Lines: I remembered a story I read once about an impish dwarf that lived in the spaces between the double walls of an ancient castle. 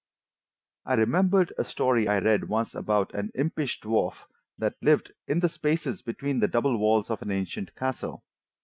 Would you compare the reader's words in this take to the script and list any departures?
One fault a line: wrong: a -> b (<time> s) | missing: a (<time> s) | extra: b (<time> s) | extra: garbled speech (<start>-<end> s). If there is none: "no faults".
no faults